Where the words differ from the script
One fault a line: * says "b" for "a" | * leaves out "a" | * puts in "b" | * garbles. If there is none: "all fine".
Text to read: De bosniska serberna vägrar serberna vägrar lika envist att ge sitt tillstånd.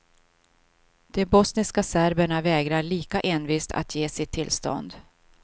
* leaves out "serberna vägrar"